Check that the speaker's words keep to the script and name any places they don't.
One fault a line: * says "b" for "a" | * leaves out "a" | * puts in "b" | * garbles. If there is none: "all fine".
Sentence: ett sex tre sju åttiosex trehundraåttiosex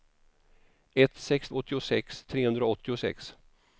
* leaves out "tre sju"